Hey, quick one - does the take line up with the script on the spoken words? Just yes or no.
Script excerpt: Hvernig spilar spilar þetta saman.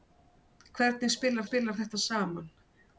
yes